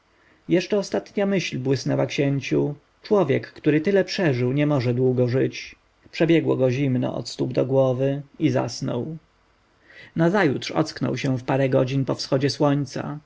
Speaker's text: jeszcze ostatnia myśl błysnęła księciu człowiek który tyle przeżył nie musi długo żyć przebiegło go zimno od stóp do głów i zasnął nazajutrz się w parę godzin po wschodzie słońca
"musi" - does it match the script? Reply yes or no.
no